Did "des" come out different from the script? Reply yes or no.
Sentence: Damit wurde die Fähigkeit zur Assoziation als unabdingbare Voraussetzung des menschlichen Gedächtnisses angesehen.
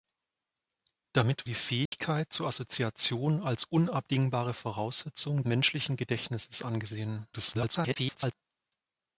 yes